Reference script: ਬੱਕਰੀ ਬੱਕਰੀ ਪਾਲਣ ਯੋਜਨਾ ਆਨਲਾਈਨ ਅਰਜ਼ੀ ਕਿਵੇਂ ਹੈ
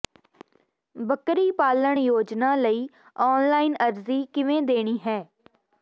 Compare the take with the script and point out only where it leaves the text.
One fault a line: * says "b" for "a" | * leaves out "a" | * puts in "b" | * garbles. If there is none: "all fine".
* leaves out "ਬੱਕਰੀ"
* puts in "ਲਈ"
* puts in "ਦੇਣੀ"